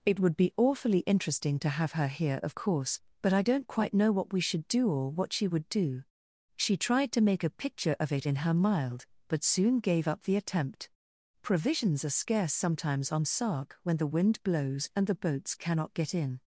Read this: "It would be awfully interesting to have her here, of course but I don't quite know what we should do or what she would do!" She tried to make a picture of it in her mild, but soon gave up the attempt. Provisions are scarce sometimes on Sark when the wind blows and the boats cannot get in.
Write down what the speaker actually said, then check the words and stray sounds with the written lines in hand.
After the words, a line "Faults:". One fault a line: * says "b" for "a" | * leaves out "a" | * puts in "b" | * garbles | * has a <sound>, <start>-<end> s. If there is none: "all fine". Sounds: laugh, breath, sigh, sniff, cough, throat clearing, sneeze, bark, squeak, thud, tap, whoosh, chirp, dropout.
"It would be awfully interesting to have her here, of course but I don't quite know what we should do or what she would do!" She tried to make a picture of it in her mild, but soon gave up the attempt. Provisions are scarce sometimes on Sark when the wind blows and the boats cannot get in.
Faults:
all fine